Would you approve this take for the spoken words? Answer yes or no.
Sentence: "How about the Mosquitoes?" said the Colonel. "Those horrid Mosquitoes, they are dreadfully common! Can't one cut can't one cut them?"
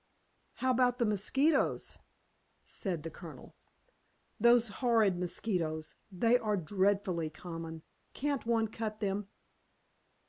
no